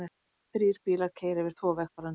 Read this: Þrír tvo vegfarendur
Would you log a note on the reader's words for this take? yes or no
yes